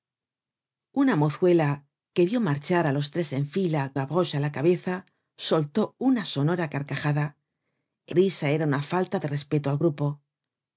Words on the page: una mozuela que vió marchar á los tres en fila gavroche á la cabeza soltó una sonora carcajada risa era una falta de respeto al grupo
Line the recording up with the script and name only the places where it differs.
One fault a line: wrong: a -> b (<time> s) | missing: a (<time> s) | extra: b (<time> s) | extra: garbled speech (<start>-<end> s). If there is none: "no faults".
no faults